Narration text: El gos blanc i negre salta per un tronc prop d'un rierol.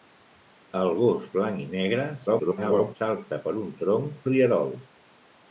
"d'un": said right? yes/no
no